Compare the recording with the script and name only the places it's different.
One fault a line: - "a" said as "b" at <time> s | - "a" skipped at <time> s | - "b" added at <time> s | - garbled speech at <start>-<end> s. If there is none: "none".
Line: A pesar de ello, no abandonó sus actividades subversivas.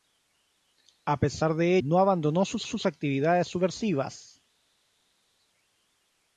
- "ello" skipped at 1.8 s
- "sus" added at 2.6 s